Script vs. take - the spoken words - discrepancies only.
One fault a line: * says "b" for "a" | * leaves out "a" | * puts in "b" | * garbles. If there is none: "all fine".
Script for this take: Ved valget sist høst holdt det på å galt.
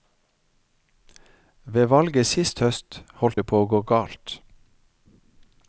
* puts in "gå"